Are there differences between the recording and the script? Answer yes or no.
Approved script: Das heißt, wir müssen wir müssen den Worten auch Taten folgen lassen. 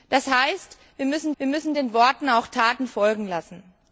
no